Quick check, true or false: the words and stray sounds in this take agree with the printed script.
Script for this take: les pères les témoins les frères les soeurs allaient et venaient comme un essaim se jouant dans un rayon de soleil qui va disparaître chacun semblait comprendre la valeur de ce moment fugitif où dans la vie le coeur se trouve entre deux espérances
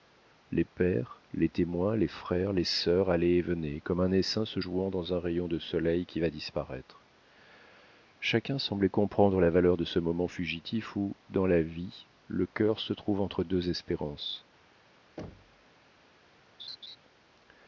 false